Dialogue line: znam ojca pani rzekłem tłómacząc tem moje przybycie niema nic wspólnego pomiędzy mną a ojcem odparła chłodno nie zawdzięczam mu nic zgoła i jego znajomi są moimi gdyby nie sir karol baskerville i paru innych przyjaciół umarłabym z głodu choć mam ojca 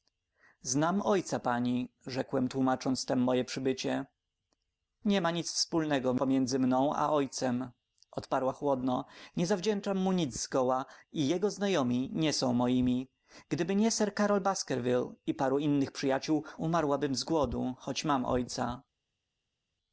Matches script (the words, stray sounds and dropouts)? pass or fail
fail